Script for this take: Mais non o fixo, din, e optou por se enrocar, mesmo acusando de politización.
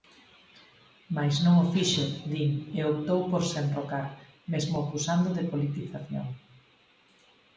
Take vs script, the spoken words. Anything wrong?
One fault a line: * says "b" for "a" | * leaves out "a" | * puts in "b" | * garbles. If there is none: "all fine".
all fine